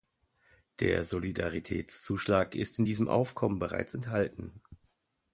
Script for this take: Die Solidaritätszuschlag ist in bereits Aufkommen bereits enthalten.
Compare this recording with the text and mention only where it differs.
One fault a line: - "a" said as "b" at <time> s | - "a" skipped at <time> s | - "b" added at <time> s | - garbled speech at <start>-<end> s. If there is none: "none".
- "Die" said as "Der" at 0.8 s
- "bereits" said as "diesem" at 2.8 s